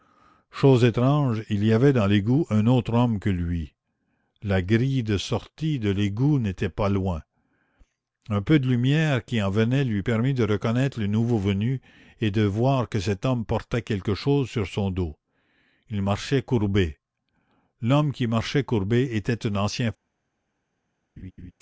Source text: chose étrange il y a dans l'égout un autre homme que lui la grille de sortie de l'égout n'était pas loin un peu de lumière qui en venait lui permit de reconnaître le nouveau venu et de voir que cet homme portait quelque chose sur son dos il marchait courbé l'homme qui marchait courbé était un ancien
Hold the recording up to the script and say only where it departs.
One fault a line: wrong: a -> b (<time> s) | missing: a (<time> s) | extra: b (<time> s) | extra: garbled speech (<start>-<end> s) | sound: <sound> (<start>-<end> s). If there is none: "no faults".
wrong: a -> avait (1.7 s)
sound: laugh (21.2-21.5 s)